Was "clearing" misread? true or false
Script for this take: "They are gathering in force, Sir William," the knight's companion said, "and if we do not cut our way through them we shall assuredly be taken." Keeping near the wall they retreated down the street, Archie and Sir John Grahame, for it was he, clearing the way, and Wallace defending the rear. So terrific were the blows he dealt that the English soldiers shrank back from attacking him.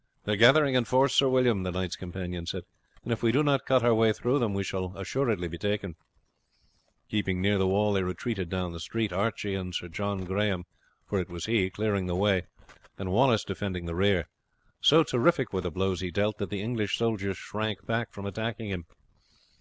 false